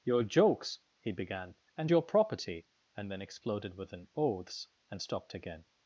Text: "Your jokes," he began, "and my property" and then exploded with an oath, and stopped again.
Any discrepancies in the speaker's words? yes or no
yes